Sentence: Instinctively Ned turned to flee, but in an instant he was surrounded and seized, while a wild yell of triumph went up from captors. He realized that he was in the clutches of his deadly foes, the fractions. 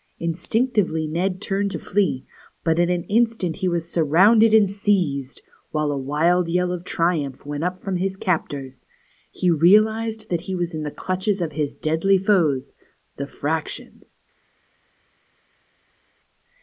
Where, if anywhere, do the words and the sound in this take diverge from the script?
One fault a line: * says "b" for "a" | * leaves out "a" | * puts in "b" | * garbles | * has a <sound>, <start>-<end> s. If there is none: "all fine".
* puts in "his"